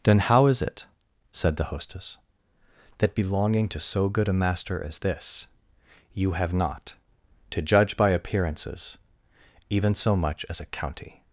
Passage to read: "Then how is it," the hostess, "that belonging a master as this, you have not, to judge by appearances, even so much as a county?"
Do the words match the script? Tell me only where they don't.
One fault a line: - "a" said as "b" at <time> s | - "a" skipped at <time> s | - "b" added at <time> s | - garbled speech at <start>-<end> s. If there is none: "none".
- "said" added at 1.3 s
- "to so good" added at 3.7 s